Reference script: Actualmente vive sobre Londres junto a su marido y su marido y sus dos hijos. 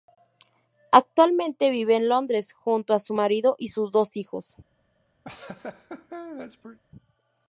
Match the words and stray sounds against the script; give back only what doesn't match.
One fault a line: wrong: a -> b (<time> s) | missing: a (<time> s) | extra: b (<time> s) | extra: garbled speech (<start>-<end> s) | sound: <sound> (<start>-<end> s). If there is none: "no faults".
wrong: sobre -> en (1.9 s)
missing: su marido y (3.7 s)
sound: laugh (5.2-6.8 s)